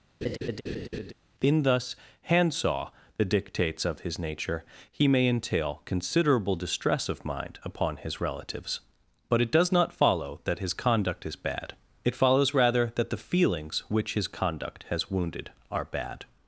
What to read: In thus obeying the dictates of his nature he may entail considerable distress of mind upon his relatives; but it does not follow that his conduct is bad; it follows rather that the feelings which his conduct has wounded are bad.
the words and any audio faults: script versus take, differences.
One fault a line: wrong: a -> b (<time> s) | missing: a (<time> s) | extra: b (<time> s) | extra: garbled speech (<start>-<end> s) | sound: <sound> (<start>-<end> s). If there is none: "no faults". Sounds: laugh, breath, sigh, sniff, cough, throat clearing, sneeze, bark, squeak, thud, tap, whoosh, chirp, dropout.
sound: laugh (0.2-1.1 s)
wrong: obeying -> handsaw (2.2 s)